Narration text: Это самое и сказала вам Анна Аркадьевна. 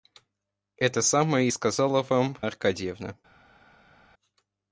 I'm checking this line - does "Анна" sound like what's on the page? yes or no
no